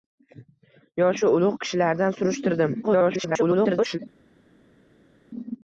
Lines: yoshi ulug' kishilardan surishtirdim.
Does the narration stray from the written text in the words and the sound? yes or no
yes